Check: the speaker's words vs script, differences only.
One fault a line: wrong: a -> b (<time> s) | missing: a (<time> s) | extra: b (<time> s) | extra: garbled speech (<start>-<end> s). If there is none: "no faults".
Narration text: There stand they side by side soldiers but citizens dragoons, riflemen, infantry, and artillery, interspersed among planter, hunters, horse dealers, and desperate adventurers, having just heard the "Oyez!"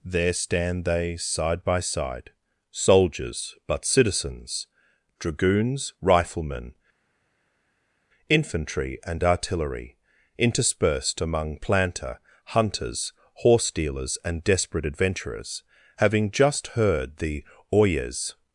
no faults